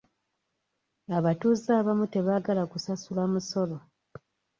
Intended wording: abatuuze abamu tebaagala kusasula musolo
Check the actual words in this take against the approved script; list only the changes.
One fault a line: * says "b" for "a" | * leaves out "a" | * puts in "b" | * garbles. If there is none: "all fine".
all fine